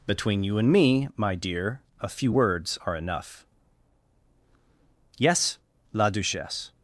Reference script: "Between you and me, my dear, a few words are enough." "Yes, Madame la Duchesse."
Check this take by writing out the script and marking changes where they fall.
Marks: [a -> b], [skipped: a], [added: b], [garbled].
"Between you and me, my dear, a few words are enough." "Yes, [skipped: Madame] la Duchesse."